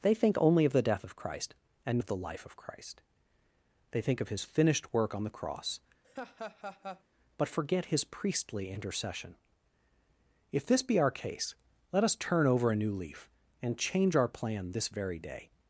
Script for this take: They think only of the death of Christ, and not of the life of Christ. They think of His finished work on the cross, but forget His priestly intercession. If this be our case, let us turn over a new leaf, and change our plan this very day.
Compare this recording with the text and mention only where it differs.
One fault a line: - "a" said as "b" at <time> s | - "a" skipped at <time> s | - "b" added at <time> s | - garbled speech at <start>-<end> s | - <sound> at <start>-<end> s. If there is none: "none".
- "not" skipped at 2.0 s
- laugh at 6.0-7.0 s